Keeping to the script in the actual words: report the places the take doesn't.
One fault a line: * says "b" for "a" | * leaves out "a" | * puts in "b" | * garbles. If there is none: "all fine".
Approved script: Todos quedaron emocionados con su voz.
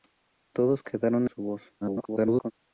* leaves out "emocionados con"
* garbles